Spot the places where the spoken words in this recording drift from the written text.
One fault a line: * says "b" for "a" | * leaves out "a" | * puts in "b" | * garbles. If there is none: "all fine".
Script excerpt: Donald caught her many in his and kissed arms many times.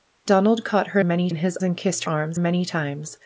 all fine